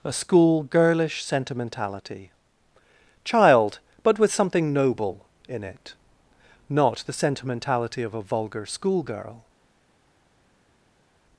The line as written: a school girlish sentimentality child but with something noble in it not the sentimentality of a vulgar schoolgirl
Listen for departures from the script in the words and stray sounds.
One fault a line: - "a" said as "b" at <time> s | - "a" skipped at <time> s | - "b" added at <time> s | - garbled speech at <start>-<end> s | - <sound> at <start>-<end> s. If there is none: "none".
none